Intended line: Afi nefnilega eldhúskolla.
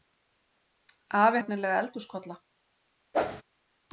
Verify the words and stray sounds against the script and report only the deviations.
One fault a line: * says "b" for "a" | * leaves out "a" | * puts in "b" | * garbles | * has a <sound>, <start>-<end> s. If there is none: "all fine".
* has a whoosh, 3.1-3.4 s